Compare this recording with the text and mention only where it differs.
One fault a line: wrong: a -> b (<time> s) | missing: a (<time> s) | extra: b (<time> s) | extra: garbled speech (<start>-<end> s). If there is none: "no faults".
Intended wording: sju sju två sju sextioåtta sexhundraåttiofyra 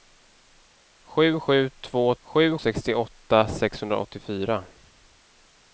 no faults